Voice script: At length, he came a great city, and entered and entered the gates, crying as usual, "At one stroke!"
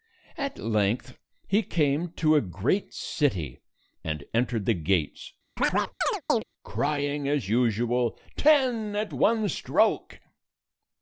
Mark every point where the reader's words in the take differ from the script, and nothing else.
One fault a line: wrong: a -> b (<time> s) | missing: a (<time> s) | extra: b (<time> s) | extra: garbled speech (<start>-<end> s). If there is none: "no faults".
extra: to (2.1 s)
missing: and entered (4.7 s)
extra: Ten (8.3 s)